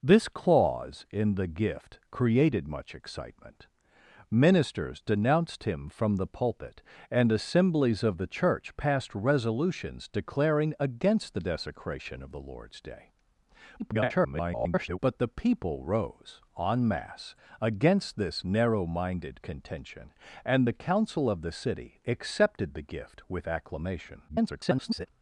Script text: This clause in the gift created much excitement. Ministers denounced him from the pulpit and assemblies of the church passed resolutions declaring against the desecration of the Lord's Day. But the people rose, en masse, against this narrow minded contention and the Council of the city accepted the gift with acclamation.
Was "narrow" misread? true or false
false